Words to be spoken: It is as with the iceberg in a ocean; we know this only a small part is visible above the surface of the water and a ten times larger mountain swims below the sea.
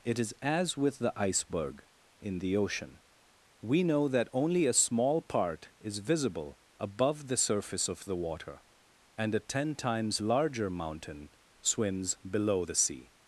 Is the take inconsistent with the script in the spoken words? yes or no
yes